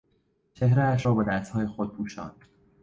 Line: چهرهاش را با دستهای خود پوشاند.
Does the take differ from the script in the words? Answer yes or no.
no